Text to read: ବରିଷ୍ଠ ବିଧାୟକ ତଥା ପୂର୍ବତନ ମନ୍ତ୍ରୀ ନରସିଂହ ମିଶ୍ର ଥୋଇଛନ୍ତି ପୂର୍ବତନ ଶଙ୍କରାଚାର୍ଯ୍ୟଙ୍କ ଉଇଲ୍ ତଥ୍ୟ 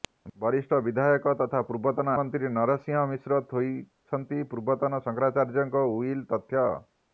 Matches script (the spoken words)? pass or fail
pass